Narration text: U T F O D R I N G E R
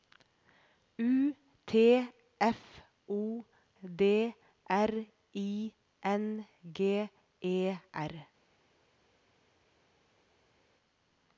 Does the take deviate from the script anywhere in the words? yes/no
no